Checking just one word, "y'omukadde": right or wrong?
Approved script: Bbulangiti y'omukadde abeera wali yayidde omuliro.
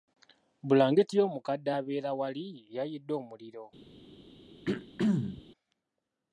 right